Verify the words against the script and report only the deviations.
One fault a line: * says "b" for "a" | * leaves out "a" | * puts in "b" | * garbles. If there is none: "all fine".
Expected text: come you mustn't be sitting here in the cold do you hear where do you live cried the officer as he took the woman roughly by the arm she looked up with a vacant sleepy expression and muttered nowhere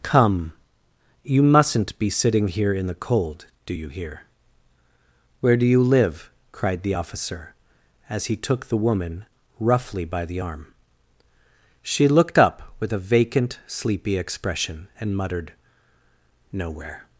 all fine